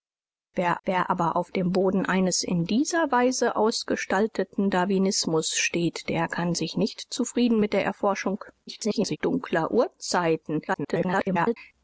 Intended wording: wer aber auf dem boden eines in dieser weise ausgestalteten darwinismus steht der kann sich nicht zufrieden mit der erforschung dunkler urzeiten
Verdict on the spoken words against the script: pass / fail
fail